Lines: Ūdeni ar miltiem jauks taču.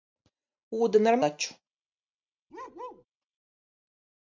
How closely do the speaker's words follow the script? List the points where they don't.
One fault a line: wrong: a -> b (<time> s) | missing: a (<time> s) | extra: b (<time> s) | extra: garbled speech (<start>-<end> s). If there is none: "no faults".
missing: miltiem jauks (1.2 s)